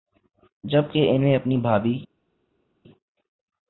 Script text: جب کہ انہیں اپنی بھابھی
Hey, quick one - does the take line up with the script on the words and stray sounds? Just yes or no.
yes